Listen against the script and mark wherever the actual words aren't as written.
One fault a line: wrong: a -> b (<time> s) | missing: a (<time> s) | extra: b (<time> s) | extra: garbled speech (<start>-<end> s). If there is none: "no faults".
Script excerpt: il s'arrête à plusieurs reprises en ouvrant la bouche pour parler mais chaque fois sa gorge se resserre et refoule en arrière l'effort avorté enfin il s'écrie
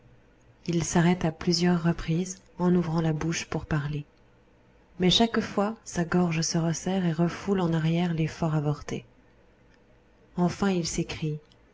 no faults